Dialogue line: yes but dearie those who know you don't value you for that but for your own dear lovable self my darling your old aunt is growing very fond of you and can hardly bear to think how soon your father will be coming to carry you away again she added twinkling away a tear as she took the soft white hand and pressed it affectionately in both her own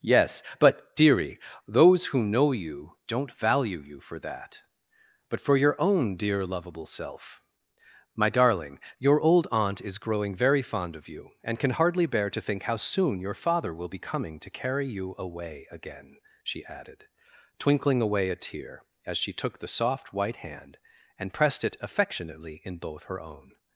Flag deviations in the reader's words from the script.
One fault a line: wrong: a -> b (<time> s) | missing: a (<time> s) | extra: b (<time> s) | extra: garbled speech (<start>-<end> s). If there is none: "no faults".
no faults